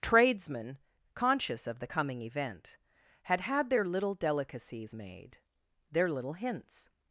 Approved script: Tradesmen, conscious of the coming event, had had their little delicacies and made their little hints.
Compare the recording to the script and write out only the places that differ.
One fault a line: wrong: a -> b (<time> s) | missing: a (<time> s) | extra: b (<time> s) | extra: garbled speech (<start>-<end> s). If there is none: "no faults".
missing: and (4.9 s)